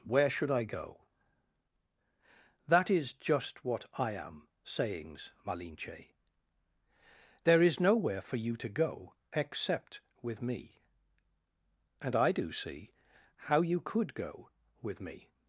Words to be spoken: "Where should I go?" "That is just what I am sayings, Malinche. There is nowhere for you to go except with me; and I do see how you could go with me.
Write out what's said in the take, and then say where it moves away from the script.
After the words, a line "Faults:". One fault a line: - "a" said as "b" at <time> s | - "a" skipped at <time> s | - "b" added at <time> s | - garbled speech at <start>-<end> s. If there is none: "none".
"Where should I go?" "That is just what I am sayings, Malinche. There is nowhere for you to go except with me; and I do see how you could go with me.
Faults:
none